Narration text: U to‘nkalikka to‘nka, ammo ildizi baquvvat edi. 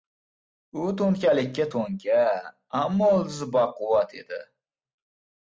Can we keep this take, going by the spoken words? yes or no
yes